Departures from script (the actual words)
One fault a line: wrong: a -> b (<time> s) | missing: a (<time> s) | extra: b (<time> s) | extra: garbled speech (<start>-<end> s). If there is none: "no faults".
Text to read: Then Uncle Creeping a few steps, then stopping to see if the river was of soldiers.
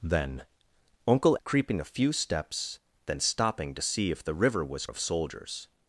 no faults